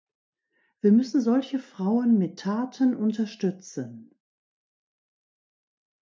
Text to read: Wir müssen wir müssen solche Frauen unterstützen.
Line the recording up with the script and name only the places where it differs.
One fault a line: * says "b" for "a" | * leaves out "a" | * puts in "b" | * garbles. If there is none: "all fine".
* says "solche Frauen mit Taten" for "wir müssen solche Frauen"